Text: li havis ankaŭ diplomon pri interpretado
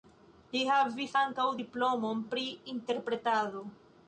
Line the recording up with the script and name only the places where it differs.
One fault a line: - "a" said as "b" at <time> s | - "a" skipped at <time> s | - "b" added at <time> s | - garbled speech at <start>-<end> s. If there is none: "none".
none